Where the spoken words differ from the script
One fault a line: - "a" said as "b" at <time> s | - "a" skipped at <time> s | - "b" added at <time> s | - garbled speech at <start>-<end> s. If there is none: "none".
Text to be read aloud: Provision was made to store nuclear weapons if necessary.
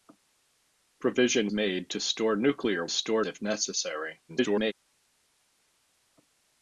- "was" skipped at 1.5 s
- "weapons" said as "store" at 2.9 s
- garbled speech at 4.3-4.7 s